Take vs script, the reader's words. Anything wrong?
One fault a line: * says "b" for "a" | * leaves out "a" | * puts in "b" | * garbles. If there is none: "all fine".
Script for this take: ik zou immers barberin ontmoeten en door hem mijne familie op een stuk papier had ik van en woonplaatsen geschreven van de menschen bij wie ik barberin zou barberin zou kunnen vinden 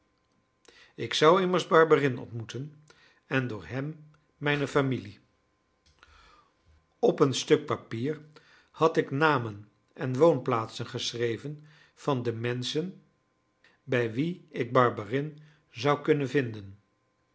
* says "namen" for "van"
* leaves out "barberin zou"